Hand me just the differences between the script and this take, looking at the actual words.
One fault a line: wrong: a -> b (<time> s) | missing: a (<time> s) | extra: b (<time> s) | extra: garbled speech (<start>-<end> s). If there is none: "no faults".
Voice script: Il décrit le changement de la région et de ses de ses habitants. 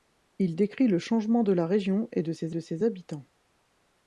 no faults